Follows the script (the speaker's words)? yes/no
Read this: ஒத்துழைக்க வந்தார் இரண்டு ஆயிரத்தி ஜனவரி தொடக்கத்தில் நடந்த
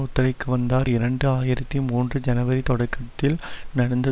no